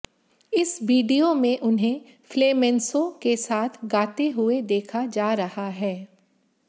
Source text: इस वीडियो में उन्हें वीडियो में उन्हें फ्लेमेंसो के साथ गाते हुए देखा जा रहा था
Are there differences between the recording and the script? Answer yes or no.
yes